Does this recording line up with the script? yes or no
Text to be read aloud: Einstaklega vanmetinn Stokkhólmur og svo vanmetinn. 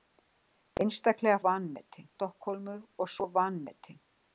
yes